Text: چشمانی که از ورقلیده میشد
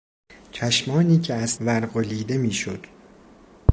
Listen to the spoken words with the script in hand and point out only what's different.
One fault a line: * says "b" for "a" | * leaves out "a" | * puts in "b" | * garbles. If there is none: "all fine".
all fine